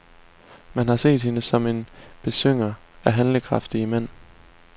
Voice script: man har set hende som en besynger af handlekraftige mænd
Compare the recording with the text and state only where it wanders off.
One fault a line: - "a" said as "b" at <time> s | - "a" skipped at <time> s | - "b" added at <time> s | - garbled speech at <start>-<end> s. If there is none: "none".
none